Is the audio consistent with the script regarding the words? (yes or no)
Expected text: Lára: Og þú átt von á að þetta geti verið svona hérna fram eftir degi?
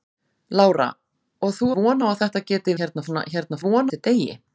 no